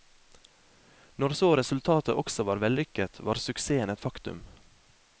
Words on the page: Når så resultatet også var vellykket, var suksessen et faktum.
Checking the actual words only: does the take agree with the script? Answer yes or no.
yes